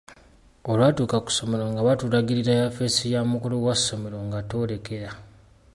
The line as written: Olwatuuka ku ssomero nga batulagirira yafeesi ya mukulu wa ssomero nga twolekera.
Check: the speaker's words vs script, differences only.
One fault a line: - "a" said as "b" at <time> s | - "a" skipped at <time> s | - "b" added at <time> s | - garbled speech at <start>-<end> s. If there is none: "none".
none